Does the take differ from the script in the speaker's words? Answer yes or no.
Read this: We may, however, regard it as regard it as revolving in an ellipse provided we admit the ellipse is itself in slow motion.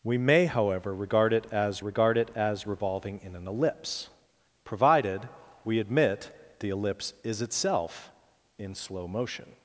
no